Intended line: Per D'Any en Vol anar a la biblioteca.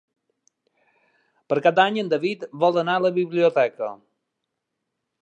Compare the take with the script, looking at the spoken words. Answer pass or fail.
fail